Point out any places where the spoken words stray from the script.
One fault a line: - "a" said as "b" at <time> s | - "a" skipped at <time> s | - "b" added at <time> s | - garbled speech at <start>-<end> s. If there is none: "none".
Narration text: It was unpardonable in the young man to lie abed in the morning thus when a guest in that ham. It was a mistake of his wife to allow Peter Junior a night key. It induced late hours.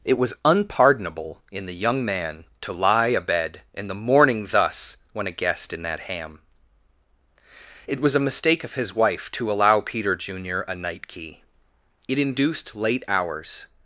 none